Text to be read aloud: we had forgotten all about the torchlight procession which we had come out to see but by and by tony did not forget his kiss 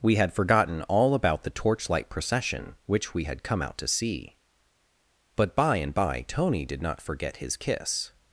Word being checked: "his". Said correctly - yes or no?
yes